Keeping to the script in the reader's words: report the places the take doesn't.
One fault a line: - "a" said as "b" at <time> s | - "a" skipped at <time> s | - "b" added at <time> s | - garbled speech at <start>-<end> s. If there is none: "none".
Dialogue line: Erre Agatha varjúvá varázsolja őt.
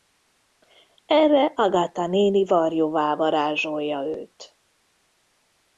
- "néni" added at 2.1 s